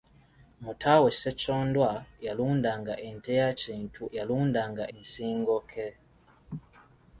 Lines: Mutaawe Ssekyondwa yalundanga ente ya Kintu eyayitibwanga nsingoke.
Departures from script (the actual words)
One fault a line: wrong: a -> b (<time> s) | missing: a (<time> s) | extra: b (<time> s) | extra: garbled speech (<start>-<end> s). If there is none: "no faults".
wrong: eyayitibwanga -> yalundanga (4.2 s)